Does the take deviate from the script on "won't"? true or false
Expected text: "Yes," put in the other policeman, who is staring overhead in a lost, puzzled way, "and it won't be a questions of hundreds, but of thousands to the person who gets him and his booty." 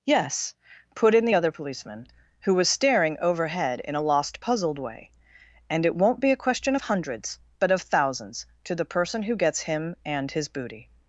false